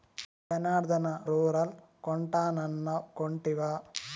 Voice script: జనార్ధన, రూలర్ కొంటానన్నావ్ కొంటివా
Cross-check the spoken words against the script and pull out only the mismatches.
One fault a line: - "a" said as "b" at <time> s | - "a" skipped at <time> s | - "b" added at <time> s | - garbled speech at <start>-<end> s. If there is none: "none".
none